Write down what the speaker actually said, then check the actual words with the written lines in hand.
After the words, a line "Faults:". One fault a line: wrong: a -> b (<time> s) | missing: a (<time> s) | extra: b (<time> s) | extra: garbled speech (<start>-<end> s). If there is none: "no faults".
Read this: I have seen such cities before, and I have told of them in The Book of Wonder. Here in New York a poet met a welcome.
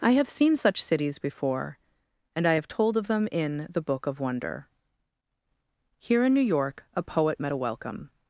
I have seen such cities before, and I have told of them in The Book of Wonder. Here in New York a poet met a welcome.
Faults:
no faults